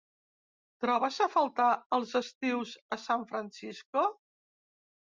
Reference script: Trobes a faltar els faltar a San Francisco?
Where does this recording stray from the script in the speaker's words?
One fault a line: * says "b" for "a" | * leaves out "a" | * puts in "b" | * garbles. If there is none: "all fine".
* says "estius" for "faltar"